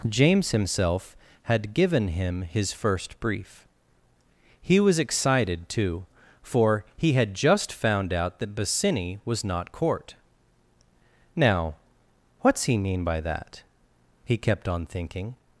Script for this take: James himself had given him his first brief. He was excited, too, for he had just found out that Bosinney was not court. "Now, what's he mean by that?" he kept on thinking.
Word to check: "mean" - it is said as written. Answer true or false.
true